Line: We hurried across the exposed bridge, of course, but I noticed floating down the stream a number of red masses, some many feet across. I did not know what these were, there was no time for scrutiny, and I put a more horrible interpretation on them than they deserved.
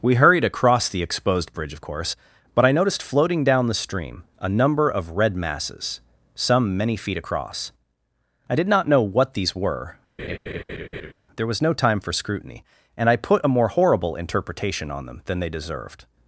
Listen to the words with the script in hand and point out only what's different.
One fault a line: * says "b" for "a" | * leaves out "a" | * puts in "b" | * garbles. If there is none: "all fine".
all fine